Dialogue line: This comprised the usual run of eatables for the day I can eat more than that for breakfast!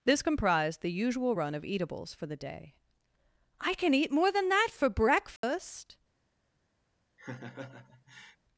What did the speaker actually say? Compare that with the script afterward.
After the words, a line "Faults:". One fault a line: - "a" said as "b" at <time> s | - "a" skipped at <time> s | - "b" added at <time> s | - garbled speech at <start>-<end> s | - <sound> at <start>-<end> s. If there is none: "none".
This comprised the usual run of eatables for the day I can eat more than that for breakfast!
Faults:
- dropout at 5.4-5.4 s
- laugh at 7.2-8.4 s